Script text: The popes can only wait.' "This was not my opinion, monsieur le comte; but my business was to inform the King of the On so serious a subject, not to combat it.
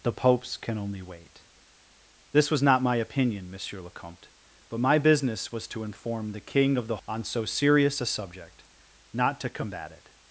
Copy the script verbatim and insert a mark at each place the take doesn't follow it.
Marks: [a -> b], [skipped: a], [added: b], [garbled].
The popes can only wait.' "This was not my opinion, monsieur le comte; but my business was to inform the King of the On so serious a subject, not to combat it.